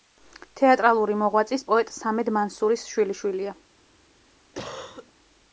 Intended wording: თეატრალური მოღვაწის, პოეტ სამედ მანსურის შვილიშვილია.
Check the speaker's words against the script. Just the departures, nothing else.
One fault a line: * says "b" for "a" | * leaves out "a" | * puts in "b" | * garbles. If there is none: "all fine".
all fine